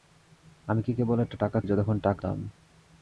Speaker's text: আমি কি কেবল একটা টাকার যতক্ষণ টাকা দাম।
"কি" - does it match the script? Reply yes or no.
yes